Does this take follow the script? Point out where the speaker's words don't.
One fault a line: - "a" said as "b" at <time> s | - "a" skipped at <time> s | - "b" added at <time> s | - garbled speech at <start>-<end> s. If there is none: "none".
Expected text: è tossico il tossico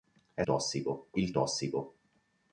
none